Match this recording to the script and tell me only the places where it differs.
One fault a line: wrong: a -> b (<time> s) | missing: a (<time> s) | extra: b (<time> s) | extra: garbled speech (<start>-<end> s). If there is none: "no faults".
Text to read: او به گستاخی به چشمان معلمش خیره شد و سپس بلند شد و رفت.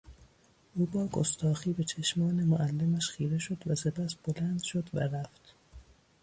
wrong: به -> با (0.8 s)